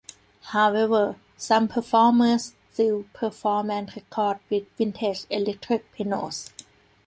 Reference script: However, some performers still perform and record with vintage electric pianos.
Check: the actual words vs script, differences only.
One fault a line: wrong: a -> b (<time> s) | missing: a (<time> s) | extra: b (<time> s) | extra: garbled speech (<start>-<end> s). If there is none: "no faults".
no faults